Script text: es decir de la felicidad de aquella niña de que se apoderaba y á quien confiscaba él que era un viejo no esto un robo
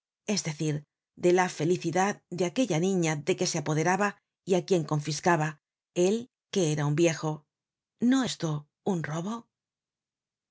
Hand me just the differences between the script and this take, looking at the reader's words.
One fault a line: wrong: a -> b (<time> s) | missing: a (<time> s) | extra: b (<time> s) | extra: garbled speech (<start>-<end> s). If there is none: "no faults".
no faults